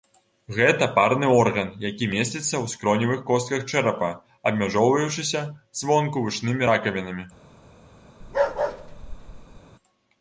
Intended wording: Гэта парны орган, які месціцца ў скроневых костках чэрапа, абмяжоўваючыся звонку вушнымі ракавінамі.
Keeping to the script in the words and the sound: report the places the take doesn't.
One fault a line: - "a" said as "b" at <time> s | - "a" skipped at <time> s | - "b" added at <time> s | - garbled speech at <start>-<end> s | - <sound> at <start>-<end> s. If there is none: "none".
- bark at 8.2-9.6 s